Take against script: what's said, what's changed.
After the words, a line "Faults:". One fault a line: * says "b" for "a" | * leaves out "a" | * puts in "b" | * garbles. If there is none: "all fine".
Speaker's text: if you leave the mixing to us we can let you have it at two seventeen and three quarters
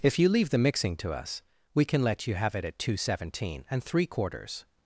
if you leave the mixing to us we can let you have it at two seventeen and three quarters
Faults:
all fine